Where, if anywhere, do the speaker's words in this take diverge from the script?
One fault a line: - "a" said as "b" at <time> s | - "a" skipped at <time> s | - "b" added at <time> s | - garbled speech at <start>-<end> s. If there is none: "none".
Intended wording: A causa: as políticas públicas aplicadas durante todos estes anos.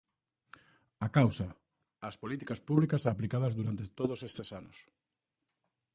none